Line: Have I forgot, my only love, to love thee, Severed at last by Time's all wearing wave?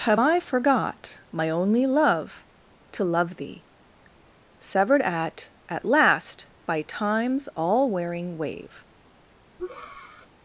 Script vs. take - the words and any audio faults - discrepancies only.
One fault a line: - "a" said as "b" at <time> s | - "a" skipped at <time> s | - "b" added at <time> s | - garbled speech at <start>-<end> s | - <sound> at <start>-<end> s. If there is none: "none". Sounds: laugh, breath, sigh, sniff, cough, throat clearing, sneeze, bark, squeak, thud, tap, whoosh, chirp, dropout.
- "at" added at 5.7 s
- breath at 9.6-10.3 s